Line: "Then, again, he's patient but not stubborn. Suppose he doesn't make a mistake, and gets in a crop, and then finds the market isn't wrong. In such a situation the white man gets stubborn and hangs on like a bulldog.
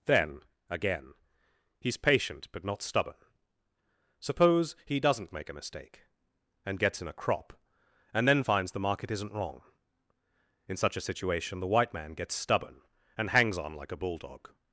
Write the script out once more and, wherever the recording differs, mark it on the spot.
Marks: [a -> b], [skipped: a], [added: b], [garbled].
"Then, again, he's patient but not stubborn. Suppose he doesn't make a mistake, and gets in a crop, and then finds the market isn't wrong. In such a situation the white man gets stubborn and hangs on like a bulldog.